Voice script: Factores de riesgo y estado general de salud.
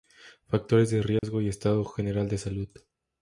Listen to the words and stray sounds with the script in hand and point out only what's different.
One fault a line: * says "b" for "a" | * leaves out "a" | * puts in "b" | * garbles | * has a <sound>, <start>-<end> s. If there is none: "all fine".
* has a dropout, 1.2-1.2 s